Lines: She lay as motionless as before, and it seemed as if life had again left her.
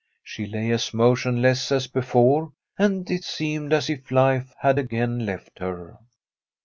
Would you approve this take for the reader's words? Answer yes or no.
yes